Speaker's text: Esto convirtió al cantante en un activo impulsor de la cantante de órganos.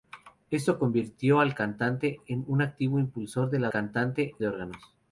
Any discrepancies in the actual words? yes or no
no